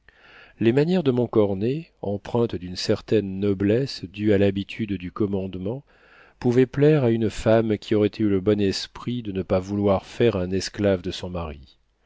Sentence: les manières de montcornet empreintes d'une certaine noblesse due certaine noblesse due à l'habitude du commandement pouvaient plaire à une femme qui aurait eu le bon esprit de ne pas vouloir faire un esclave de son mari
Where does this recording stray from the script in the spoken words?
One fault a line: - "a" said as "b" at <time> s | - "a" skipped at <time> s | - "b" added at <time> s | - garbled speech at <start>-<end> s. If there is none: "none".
- "certaine noblesse due" skipped at 4.3 s